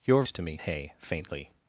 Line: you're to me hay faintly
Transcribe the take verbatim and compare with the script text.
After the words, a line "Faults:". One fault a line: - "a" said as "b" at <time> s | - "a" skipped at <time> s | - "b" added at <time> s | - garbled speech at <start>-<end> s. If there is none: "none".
you're to me hay faintly
Faults:
none